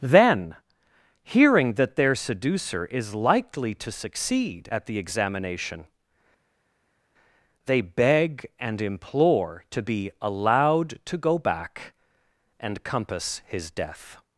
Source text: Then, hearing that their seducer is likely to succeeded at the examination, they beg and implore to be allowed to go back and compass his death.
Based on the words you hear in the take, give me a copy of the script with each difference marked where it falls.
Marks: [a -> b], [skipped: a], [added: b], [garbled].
Then, hearing that their seducer is likely to [succeeded -> succeed] at the examination, they beg and implore to be allowed to go back and compass his death.